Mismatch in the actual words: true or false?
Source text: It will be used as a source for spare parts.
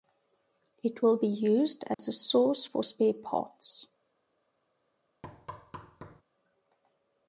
false